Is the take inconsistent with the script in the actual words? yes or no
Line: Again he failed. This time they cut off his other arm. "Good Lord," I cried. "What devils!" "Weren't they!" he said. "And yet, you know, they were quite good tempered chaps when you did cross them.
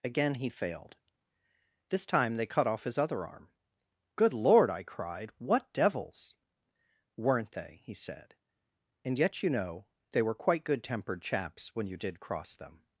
no